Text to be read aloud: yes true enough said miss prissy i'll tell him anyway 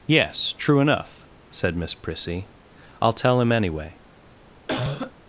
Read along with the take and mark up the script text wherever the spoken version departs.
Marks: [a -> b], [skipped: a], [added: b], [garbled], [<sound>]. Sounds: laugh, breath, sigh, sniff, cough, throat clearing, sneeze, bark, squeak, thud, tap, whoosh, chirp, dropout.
yes true enough said miss prissy i'll tell him anyway [cough]